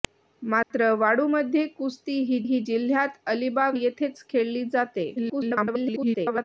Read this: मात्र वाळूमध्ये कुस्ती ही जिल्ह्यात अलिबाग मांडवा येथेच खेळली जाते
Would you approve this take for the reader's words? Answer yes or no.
no